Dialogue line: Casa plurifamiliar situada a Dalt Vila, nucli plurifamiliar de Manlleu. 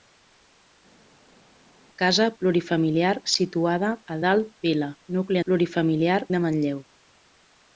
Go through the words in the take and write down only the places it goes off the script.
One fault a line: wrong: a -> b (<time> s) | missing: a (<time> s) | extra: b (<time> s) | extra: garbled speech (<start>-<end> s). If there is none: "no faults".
no faults